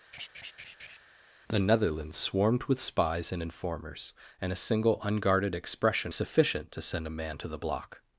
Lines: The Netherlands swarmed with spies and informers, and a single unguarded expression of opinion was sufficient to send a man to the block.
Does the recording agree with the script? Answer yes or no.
no